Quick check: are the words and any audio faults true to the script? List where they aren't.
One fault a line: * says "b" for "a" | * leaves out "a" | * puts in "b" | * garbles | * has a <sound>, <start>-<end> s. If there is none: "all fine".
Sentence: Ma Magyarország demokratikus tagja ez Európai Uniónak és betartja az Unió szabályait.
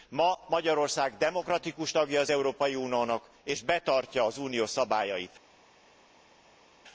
* says "az" for "ez"